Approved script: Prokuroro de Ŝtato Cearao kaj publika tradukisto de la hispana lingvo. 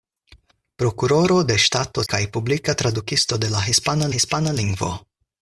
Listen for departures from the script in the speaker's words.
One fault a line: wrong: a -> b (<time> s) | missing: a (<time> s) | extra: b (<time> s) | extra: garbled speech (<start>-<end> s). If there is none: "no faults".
missing: Cearao (2.0 s)
extra: hispana (4.2 s)